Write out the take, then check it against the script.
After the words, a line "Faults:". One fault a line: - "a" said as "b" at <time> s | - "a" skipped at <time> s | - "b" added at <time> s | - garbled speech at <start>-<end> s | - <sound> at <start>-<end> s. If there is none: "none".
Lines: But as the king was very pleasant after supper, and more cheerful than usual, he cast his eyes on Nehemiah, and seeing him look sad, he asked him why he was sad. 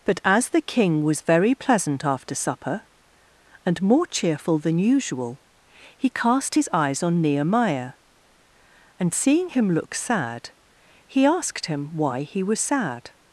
But as the king was very pleasant after supper, and more cheerful than usual, he cast his eyes on Nehemiah, and seeing him look sad, he asked him why he was sad.
Faults:
none